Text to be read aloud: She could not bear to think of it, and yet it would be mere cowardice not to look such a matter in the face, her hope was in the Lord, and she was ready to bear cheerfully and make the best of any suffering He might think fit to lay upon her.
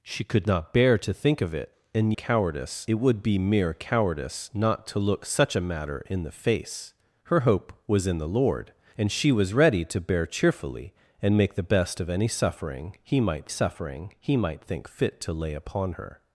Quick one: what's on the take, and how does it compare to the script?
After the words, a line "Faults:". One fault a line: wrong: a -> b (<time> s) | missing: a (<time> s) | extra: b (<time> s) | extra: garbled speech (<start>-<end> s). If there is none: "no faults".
She could not bear to think of it, and cowardice it would be mere cowardice not to look such a matter in the face, her hope was in the Lord, and she was ready to bear cheerfully and make the best of any suffering He might suffering He might think fit to lay upon her.
Faults:
wrong: yet -> cowardice (2.1 s)
extra: suffering He might (13.5 s)